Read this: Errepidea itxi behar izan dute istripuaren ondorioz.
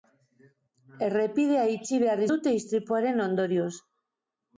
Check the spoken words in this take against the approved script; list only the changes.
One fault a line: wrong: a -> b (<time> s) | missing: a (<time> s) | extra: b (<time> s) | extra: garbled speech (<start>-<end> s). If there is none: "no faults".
missing: izan (2.2 s)